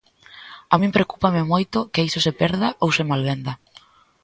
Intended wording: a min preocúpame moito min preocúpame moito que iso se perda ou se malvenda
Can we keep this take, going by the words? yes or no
no